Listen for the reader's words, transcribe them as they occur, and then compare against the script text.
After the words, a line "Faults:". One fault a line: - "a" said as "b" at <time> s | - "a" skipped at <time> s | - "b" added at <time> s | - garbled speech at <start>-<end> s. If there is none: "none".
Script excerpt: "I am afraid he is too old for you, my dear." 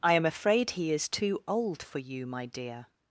"I am afraid he is too old for you, my dear."
Faults:
none